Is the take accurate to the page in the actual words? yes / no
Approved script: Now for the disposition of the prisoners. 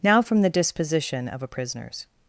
no